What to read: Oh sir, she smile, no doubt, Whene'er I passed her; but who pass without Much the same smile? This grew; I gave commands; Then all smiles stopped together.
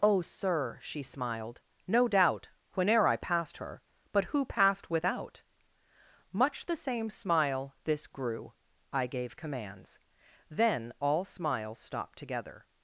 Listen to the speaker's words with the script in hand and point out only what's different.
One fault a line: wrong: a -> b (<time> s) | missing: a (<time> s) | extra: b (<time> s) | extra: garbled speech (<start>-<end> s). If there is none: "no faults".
wrong: smile -> smiled (1.0 s)
wrong: pass -> passed (4.5 s)